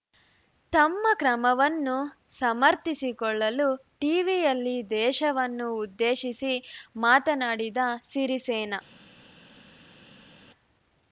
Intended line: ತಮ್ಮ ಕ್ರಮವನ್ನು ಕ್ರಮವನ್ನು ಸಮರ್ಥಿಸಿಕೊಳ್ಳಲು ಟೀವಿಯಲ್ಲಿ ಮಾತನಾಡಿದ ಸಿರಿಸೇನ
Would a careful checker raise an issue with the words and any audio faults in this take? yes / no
yes